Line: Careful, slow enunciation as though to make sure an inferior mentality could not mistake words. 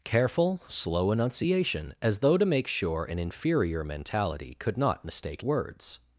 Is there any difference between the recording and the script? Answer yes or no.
no